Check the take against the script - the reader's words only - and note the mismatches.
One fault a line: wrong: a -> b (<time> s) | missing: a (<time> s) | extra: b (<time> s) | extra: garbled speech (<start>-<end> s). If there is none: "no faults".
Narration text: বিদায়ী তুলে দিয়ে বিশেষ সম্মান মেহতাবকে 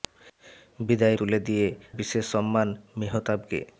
no faults